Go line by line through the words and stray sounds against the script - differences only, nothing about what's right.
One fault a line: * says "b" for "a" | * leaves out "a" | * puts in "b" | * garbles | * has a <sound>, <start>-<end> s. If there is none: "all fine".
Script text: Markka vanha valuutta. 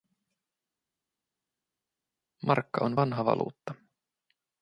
* puts in "on"